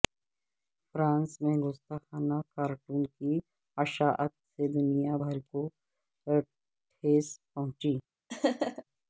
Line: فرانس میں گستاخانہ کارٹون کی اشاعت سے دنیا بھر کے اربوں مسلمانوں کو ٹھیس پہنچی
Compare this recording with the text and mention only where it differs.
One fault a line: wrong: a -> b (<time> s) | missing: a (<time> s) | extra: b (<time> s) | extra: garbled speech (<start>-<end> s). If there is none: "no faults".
missing: کے اربوں مسلمانوں (5.4 s)